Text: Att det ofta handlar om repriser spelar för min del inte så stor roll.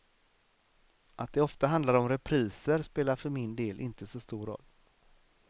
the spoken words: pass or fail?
pass